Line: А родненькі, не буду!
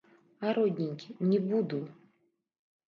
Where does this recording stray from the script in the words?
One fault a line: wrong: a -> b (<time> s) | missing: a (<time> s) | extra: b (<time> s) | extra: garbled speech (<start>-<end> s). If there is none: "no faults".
no faults